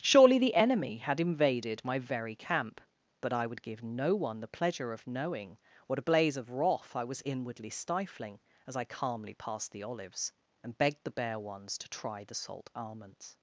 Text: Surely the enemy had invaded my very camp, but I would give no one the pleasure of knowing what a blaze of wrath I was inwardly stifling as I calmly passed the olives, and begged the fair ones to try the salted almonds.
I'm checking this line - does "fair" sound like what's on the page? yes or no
no